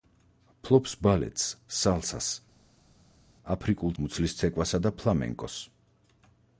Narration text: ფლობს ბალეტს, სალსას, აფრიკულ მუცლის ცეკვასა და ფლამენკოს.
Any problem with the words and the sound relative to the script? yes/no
no